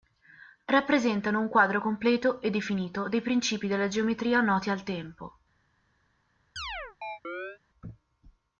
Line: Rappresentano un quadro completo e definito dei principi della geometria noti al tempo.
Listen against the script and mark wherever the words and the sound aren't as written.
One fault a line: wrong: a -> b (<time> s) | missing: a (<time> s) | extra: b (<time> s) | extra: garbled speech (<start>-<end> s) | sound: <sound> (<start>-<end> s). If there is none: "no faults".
sound: chirp (6.6-7.6 s)